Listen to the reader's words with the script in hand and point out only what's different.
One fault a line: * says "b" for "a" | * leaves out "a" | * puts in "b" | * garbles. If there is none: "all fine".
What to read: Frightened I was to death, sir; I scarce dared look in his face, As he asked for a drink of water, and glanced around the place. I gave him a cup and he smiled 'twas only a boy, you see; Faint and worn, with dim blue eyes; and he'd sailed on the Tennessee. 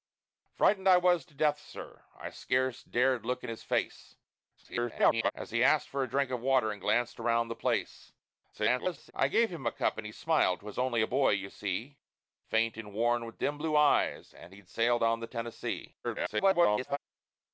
* garbles
* garbles
* garbles